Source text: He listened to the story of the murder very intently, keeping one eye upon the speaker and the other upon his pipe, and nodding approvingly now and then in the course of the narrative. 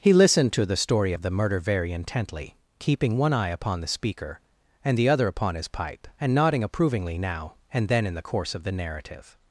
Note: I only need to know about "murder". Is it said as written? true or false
true